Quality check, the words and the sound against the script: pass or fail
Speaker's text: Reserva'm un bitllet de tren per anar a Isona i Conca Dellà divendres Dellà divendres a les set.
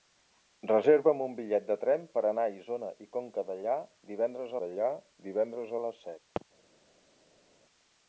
pass